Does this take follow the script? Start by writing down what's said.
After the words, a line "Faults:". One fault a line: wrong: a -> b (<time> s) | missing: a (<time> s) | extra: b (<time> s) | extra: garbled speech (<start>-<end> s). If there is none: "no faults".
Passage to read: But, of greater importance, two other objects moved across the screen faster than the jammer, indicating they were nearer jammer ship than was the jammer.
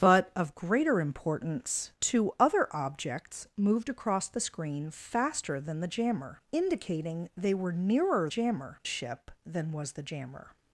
But, of greater importance, two other objects moved across the screen faster than the jammer, indicating they were nearer jammer ship than was the jammer.
Faults:
no faults